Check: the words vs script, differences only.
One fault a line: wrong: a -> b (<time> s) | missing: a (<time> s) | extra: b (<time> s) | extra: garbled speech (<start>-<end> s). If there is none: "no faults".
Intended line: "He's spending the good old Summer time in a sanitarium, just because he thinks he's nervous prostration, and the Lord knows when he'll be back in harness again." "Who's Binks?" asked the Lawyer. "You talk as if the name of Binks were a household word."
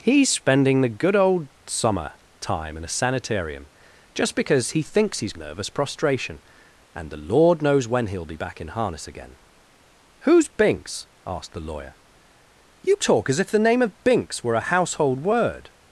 no faults